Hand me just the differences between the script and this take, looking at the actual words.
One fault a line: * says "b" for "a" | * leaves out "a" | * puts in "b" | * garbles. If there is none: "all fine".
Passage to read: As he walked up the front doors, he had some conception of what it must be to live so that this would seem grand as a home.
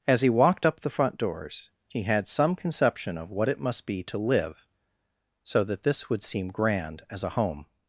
all fine